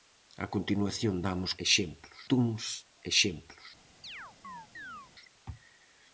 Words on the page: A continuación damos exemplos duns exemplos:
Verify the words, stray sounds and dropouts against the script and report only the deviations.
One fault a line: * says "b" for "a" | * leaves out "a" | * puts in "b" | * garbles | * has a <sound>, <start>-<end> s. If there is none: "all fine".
* has a chirp, 4.0-5.1 s